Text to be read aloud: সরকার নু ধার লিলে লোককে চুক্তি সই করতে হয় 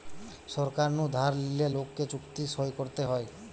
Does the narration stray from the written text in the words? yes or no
no